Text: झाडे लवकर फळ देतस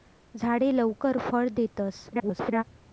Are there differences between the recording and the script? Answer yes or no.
yes